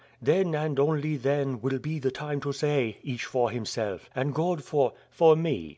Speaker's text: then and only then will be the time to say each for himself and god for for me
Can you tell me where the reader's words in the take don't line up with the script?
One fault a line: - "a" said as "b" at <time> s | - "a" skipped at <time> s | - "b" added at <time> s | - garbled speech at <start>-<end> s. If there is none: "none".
none